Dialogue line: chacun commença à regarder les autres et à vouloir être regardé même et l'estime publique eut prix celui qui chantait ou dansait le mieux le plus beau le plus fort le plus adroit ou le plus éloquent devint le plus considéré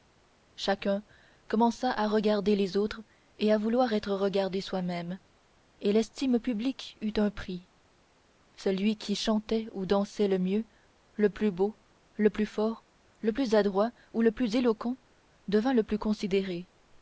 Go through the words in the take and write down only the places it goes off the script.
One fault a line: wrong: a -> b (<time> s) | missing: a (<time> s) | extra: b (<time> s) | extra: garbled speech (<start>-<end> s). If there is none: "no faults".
extra: soi (4.6 s)
extra: un (7.2 s)